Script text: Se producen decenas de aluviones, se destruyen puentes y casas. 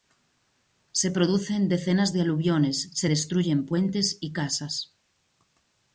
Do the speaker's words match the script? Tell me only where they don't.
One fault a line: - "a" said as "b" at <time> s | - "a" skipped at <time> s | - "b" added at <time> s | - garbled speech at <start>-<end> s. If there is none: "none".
none